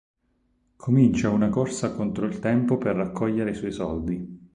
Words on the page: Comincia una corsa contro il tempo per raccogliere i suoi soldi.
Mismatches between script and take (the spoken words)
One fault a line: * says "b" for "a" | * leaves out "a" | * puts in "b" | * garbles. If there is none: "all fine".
all fine